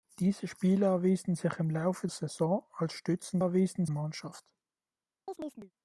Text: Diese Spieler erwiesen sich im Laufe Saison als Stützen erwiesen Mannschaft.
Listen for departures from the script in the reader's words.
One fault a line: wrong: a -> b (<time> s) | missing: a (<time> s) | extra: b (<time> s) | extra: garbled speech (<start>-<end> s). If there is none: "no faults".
no faults